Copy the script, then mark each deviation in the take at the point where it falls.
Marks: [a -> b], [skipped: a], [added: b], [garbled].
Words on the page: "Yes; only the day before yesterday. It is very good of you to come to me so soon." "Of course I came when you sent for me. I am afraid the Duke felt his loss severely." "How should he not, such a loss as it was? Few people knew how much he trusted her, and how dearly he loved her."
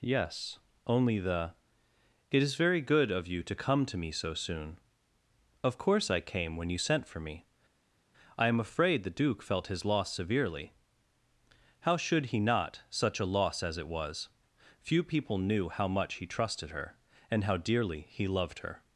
"Yes; only the [skipped: day before yesterday.] It is very good of you to come to me so soon." "Of course I came when you sent for me. I am afraid the Duke felt his loss severely." "How should he not, such a loss as it was? Few people knew how much he trusted her, and how dearly he loved her."